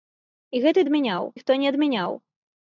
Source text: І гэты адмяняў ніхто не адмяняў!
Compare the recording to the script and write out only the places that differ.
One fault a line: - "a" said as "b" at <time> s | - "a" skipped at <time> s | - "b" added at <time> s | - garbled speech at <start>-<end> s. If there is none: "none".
none